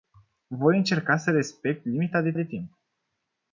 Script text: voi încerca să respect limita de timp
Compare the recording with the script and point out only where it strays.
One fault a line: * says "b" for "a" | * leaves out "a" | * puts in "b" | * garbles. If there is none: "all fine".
* puts in "de"